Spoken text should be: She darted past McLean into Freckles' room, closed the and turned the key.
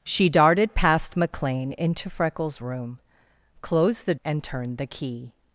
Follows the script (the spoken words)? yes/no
yes